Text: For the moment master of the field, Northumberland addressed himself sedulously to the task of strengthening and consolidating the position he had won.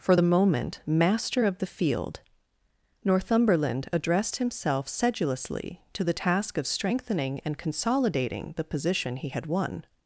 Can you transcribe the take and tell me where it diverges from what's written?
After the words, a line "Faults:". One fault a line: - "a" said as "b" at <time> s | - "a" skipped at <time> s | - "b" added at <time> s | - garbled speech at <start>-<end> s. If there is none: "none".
For the moment master of the field, Northumberland addressed himself sedulously to the task of strengthening and consolidating the position he had won.
Faults:
none